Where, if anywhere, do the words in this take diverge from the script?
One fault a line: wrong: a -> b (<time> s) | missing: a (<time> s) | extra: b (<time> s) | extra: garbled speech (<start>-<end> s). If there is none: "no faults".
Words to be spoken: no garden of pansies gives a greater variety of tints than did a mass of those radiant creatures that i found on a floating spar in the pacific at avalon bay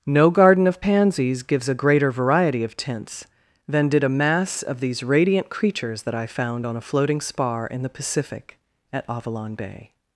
wrong: those -> these (4.8 s)